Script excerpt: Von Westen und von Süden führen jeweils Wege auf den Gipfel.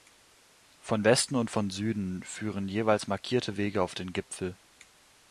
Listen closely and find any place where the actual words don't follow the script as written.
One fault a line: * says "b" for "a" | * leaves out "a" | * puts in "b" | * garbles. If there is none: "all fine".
* puts in "markierte"